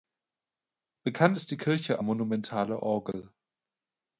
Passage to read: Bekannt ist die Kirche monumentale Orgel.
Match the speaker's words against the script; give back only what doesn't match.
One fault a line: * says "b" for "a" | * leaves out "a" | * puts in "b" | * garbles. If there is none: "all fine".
all fine